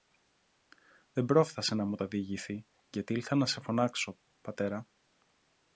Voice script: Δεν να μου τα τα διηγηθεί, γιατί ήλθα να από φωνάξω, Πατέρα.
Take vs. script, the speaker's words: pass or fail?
fail